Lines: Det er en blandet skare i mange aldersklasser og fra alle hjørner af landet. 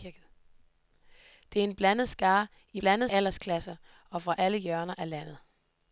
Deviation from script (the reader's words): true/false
true